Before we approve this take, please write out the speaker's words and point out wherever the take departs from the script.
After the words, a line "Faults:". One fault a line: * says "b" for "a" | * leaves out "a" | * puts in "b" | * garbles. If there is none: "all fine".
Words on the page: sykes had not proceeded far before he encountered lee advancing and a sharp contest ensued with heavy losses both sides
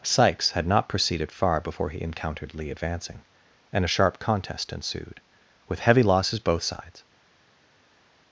sykes had not proceeded far before he encountered lee advancing and a sharp contest ensued with heavy losses both sides
Faults:
all fine